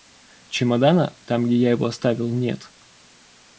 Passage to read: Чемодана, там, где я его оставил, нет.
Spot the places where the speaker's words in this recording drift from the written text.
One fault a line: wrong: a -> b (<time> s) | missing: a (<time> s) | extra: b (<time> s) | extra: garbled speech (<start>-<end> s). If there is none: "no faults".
no faults